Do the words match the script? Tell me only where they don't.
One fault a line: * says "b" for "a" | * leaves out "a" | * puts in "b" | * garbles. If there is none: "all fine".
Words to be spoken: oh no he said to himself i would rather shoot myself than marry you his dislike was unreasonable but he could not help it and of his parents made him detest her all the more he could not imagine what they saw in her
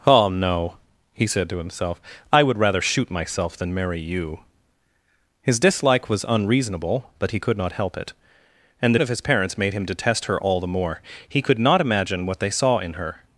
all fine